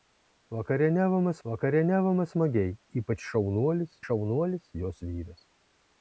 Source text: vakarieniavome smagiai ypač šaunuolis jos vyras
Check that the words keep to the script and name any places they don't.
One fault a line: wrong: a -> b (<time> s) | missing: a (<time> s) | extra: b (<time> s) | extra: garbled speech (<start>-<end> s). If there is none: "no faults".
extra: vakarieniavome (1.5 s)
extra: šaunuolis (4.1 s)